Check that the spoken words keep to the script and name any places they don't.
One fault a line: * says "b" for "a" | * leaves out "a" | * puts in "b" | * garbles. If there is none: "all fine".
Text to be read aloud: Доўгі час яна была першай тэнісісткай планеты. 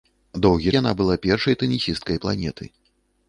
* leaves out "час"